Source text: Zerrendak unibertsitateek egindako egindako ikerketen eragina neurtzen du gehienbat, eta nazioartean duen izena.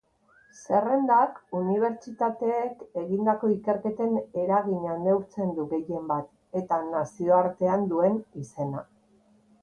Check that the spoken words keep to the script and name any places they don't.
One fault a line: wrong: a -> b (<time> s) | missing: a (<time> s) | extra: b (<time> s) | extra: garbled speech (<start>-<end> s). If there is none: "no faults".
missing: egindako (3.5 s)